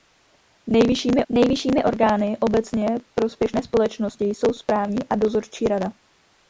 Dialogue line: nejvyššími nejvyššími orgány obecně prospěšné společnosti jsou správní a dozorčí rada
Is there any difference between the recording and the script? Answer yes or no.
no